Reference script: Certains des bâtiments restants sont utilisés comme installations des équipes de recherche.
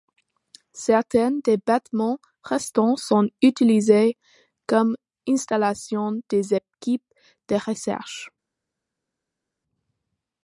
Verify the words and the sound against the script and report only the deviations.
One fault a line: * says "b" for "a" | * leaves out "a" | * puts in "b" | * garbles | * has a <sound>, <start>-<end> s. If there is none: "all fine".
all fine